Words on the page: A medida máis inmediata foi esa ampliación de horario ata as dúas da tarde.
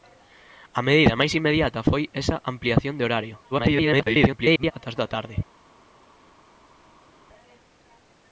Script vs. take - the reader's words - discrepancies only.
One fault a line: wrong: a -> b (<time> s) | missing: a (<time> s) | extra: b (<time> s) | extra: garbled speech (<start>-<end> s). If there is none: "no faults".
extra: garbled speech (3.5-4.7 s)
missing: dúas (5.0 s)